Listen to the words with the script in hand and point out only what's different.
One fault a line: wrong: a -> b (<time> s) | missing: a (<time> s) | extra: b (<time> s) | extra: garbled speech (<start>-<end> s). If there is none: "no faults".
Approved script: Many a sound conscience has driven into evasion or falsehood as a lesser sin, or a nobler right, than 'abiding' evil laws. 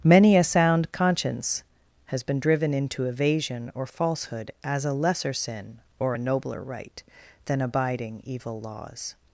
extra: been (2.2 s)